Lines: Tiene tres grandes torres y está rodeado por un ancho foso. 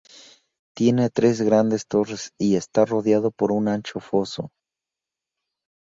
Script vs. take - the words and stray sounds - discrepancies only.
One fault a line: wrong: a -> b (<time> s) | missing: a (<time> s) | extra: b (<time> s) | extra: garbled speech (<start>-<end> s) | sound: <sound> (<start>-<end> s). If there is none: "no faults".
no faults